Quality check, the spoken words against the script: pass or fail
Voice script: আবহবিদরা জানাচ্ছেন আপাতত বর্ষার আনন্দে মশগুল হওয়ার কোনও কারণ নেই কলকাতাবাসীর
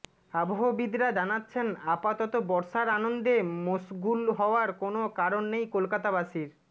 pass